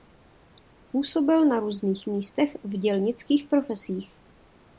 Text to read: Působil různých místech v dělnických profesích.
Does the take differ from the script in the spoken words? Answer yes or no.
yes